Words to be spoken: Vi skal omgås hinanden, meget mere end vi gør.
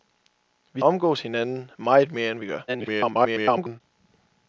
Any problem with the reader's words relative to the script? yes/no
yes